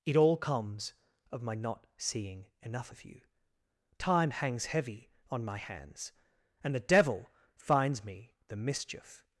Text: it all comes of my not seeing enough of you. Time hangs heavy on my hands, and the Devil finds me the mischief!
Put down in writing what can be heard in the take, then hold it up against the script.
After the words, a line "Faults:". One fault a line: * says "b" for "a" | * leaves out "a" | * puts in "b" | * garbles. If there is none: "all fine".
it all comes of my not seeing enough of you. Time hangs heavy on my hands, and the Devil finds me the mischief!
Faults:
all fine